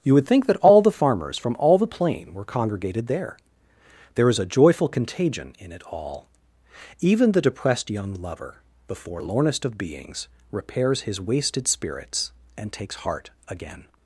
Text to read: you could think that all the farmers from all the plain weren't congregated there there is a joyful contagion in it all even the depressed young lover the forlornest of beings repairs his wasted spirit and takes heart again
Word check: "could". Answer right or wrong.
wrong